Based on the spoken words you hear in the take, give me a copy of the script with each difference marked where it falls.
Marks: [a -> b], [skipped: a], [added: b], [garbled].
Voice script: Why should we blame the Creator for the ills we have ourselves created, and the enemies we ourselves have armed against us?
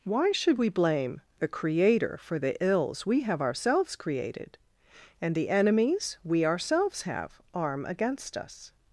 Why should we blame the Creator for the ills we have ourselves created, and the enemies we ourselves have [armed -> arm] against us?